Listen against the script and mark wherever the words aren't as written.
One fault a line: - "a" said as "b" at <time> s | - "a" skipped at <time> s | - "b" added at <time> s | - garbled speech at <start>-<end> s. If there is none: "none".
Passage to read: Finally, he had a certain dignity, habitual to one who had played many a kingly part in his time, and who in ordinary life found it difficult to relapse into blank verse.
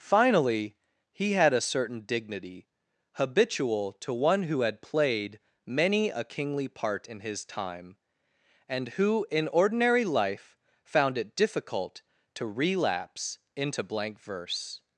none